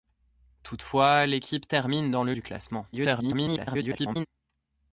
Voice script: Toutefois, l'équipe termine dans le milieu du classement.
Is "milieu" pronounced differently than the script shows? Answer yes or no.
yes